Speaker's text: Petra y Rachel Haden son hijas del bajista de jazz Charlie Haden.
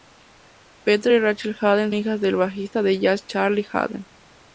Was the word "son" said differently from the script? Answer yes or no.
yes